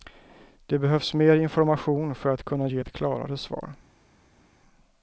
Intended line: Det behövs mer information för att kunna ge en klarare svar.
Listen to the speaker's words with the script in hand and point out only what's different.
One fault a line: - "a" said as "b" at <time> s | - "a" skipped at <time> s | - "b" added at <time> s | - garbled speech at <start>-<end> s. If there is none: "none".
- "en" said as "ett" at 2.8 s